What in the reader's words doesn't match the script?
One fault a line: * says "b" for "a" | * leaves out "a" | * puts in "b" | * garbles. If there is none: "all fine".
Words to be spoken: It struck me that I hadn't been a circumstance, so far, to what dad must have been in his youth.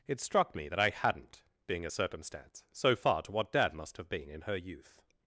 * says "being" for "been"
* says "her" for "his"